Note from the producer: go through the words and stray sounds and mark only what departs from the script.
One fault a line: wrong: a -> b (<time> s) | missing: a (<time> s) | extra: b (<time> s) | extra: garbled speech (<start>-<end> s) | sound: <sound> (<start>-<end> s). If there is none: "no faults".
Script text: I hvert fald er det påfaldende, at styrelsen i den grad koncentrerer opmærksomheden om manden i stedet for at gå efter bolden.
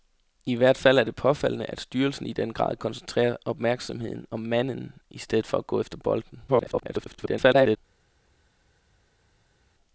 extra: garbled speech (6.5-7.8 s)